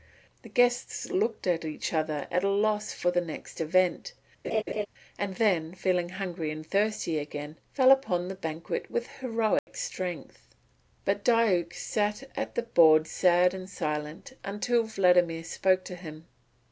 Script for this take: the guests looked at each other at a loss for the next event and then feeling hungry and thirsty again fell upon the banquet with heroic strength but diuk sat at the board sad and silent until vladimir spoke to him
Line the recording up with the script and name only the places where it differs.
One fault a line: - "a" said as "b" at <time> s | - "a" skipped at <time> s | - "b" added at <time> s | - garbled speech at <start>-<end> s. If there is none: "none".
none